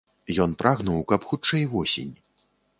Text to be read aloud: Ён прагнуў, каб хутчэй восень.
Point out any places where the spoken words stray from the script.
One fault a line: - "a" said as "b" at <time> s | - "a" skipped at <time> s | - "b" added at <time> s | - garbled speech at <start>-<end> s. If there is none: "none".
none